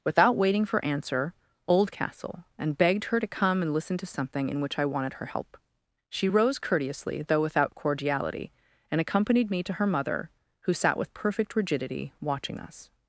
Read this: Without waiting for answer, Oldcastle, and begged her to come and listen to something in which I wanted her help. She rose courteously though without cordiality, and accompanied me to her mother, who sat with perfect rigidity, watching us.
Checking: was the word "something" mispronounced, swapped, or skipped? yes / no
no